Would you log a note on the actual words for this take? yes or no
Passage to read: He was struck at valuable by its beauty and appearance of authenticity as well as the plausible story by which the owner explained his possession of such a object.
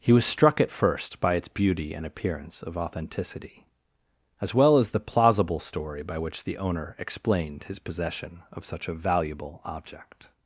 yes